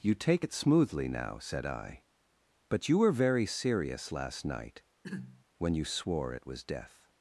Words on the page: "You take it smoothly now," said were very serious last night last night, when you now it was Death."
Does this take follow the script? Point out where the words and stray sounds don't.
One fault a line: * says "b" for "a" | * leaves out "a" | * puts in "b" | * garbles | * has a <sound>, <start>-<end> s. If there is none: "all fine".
* puts in "I but you"
* leaves out "last night"
* has a throat clearing, 5.0-5.4 s
* says "swore" for "now"